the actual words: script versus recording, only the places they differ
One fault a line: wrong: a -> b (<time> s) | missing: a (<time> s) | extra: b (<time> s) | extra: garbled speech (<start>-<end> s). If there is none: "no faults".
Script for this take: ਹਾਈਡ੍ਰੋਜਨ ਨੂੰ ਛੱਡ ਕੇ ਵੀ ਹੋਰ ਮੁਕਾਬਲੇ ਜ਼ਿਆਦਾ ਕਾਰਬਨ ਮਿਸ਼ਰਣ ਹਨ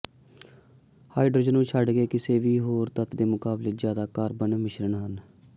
extra: ਕਿਸੇ (2.1 s)
extra: ਤੱਤ ਦੇ (3.0 s)